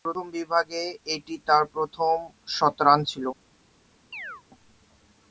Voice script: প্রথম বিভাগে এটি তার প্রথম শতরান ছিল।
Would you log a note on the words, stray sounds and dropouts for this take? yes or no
yes